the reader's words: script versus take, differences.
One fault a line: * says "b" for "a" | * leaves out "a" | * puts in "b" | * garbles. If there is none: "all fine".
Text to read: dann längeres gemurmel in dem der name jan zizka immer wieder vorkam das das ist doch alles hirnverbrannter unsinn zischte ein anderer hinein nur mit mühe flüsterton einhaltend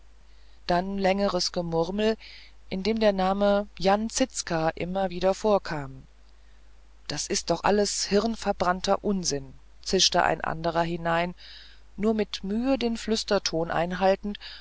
* leaves out "das"
* puts in "den"